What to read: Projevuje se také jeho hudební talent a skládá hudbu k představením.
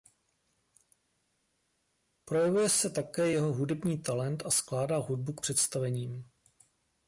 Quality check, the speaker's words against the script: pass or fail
pass